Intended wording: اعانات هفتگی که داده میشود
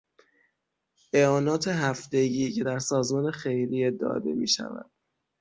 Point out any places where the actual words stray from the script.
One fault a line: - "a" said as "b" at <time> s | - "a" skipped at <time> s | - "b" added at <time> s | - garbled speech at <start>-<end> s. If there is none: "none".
- "در سازمان خیریه" added at 2.6 s